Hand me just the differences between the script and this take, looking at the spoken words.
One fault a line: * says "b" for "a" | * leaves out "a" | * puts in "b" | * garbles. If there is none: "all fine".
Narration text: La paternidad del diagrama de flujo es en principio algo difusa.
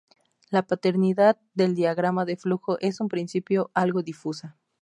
all fine